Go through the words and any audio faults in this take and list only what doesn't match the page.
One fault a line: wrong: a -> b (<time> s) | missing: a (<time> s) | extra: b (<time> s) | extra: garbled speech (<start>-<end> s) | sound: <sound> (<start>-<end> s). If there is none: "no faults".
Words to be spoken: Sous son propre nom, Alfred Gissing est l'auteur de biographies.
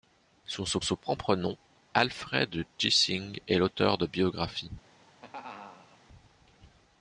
extra: son (0.8 s)
sound: laugh (4.9-6.0 s)